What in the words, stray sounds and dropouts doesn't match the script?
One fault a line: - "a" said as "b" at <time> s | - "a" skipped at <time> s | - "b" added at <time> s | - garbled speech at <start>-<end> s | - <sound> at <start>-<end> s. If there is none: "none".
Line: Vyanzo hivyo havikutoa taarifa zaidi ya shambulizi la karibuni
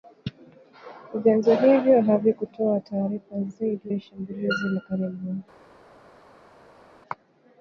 none